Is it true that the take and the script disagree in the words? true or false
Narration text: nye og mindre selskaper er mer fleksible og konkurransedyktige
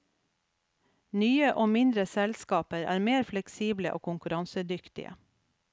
false